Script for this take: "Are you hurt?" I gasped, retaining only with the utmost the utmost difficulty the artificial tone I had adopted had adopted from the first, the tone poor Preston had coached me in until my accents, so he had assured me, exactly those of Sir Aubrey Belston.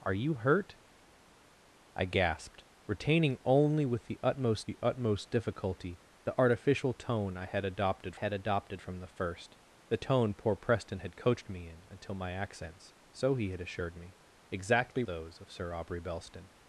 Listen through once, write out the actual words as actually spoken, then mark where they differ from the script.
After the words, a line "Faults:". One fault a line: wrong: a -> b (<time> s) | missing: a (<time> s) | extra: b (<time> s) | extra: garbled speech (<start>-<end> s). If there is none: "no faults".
"Are you hurt?" I gasped, retaining only with the utmost the utmost difficulty the artificial tone I had adopted had adopted from the first, the tone poor Preston had coached me in until my accents, so he had assured me, exactly those of Sir Aubrey Belston.
Faults:
no faults